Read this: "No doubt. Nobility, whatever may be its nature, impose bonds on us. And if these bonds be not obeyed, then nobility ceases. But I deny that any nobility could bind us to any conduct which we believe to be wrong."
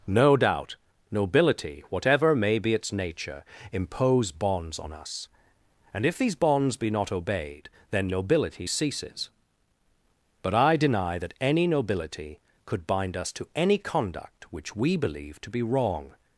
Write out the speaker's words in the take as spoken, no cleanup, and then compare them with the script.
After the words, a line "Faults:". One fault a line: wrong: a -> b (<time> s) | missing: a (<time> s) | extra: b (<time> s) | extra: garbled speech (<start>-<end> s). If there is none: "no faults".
"No doubt. Nobility, whatever may be its nature, impose bonds on us. And if these bonds be not obeyed, then nobility ceases. But I deny that any nobility could bind us to any conduct which we believe to be wrong."
Faults:
no faults